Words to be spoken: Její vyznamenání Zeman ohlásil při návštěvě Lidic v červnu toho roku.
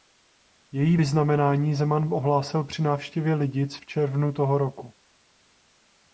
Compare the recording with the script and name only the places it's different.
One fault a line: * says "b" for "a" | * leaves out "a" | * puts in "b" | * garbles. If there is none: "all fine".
all fine